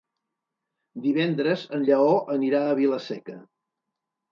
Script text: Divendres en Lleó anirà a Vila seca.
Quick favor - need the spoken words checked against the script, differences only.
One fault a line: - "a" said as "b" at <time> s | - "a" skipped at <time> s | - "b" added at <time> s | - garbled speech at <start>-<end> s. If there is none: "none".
none